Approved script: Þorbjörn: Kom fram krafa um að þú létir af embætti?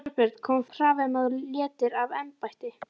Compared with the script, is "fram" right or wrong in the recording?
wrong